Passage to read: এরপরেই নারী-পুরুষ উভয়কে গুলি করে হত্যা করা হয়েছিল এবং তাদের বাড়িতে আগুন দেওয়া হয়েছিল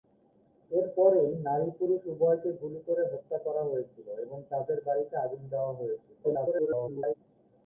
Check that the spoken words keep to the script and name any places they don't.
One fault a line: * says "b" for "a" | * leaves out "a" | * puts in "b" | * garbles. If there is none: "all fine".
* garbles